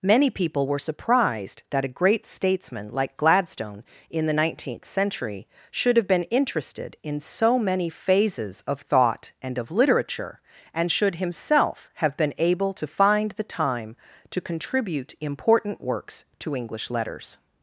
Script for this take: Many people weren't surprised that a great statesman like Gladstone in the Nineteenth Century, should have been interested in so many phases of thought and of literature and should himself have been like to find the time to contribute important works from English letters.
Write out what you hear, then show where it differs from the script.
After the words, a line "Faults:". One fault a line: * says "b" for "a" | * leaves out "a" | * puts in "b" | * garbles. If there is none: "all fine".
Many people were surprised that a great statesman like Gladstone in the Nineteenth Century, should have been interested in so many phases of thought and of literature and should himself have been able to find the time to contribute important works to English letters.
Faults:
* says "were" for "weren't"
* says "able" for "like"
* says "to" for "from"